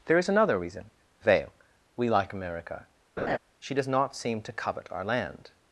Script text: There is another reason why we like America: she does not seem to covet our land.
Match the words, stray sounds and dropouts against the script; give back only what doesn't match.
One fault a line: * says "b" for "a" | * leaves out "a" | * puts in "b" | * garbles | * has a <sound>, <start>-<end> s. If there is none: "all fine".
* says "veil" for "why"
* has a laugh, 3.2-3.4 s